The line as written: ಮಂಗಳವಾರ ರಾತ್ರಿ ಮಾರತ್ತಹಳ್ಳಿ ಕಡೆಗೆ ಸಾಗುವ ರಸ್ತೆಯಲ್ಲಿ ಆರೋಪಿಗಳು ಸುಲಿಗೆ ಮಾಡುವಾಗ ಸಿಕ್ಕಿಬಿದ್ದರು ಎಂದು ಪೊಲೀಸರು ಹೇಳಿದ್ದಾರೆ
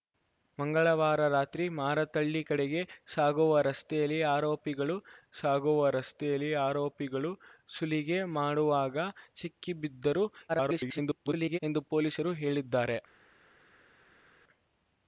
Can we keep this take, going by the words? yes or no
no